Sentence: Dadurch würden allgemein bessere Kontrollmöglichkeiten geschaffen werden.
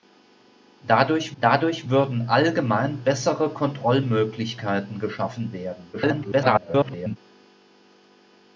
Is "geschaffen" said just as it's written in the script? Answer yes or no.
yes